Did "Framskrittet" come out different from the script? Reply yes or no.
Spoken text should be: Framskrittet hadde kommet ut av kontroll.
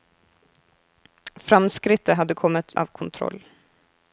no